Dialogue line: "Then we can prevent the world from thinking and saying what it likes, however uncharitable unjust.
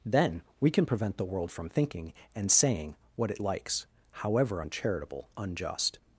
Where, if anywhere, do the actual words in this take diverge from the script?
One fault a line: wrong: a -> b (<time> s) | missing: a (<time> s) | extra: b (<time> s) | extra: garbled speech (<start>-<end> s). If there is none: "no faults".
no faults